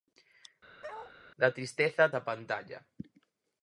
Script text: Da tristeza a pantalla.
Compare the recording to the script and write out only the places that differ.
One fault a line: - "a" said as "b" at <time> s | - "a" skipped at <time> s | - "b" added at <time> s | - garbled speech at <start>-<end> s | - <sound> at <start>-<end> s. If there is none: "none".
- bark at 0.8-1.1 s